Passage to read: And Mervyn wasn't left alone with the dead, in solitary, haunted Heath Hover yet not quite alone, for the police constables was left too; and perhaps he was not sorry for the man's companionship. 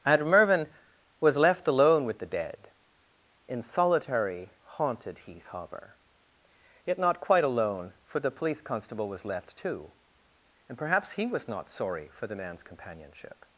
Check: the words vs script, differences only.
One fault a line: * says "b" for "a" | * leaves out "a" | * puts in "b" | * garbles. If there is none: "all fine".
* says "was" for "wasn't"
* says "constable" for "constables"